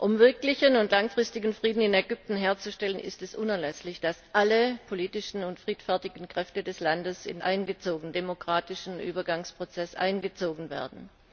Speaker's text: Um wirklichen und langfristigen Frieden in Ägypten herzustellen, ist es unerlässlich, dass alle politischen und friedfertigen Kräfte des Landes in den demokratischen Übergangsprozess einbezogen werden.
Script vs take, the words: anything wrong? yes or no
yes